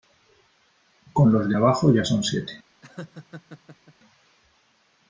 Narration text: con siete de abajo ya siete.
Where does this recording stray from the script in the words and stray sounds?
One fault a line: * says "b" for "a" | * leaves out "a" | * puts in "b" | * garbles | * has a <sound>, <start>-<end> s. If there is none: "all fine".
* says "los" for "siete"
* puts in "son"
* has a laugh, 2.8-3.9 s